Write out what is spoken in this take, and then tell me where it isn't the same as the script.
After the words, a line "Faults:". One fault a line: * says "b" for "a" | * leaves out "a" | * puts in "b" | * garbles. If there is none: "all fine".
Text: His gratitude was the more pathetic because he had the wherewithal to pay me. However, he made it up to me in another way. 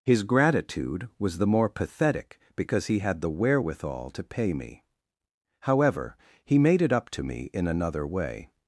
His gratitude was the more pathetic because he had the wherewithal to pay me. However, he made it up to me in another way.
Faults:
all fine